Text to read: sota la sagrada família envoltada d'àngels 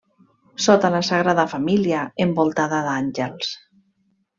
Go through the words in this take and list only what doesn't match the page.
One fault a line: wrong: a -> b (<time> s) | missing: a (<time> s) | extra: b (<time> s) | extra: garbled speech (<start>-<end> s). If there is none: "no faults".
no faults